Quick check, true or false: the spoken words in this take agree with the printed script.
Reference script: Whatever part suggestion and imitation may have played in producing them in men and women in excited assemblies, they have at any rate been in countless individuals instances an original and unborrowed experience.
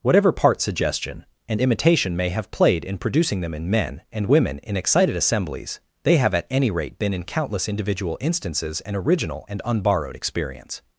false